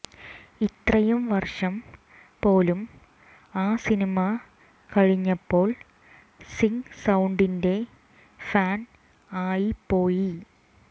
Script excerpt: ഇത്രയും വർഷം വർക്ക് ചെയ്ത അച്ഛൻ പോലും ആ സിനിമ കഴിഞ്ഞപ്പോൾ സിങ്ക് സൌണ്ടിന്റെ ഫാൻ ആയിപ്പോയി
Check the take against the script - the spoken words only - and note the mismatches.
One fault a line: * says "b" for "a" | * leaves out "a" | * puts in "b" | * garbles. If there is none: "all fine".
* leaves out "വർക്ക് ചെയ്ത അച്ഛൻ"